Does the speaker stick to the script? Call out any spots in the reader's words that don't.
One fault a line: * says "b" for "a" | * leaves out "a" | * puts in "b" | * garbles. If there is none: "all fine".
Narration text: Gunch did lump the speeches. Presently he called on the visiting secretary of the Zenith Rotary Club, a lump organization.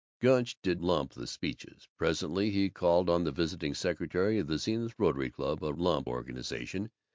all fine